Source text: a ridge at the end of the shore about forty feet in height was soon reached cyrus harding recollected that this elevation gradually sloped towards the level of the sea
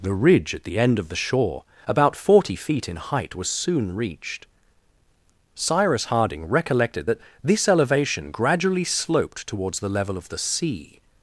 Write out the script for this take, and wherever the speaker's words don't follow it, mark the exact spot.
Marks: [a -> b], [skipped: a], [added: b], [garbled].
[a -> the] ridge at the end of the shore about forty feet in height was soon reached cyrus harding recollected that this elevation gradually sloped towards the level of the sea